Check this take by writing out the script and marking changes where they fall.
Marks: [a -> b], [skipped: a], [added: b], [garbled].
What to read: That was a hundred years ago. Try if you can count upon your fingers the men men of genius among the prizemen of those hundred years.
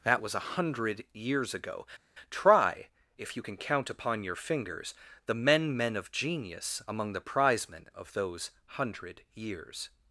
That was a hundred years ago. Try if you can count upon your fingers the men men of genius among the prizemen of those hundred years.